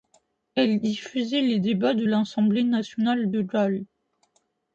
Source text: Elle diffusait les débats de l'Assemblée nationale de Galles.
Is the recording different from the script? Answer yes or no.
no